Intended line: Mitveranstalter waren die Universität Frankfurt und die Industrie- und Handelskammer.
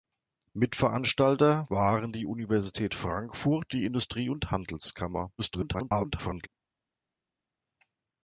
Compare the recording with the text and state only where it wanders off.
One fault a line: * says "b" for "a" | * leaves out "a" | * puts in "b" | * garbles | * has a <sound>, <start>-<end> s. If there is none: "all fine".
* leaves out "und"
* garbles